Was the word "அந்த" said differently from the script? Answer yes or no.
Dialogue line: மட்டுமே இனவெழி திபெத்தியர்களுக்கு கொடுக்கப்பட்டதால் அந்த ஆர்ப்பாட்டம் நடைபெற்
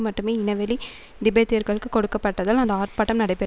no